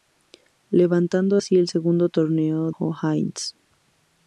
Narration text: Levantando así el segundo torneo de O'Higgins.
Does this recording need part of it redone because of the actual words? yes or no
yes